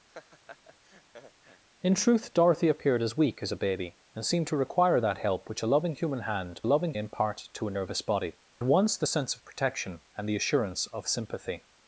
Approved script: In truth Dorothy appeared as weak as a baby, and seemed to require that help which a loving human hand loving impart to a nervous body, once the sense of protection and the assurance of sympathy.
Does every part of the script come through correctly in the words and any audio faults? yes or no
no